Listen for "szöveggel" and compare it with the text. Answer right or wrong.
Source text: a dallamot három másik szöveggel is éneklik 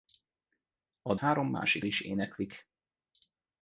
wrong